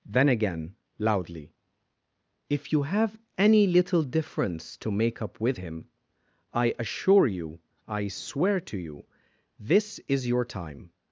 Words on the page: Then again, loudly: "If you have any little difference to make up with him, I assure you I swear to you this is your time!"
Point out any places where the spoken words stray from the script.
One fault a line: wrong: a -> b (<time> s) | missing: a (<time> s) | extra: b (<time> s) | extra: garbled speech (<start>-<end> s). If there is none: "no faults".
no faults